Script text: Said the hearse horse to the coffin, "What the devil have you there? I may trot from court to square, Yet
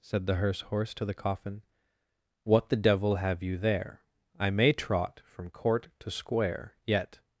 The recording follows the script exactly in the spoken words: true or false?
true